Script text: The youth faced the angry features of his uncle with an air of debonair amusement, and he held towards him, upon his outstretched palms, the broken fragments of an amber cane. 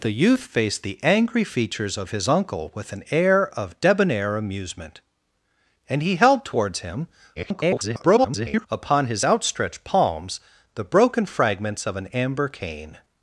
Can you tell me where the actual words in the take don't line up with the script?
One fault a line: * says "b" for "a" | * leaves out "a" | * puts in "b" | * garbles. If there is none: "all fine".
* garbles